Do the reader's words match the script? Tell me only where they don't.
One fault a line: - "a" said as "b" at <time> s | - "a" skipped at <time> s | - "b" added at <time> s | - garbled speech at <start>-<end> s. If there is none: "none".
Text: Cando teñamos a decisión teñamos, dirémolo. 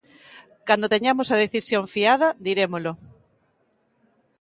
- "teñamos" said as "fiada" at 1.9 s